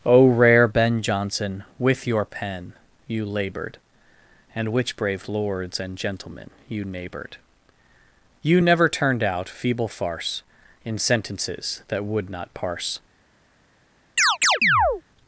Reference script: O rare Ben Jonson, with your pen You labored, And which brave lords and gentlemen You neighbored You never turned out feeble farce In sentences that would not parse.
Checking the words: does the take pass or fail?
pass